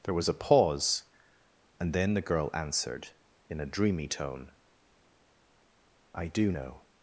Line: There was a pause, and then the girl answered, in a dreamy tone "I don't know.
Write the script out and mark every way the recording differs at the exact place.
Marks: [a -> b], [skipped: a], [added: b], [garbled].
There was a pause, and then the girl answered, in a dreamy tone "I [don't -> do] know.